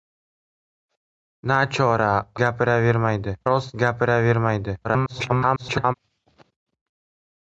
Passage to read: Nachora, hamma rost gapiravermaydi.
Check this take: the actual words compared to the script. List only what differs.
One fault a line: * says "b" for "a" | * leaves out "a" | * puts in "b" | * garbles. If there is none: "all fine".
* says "gapiravermaydi" for "hamma"
* garbles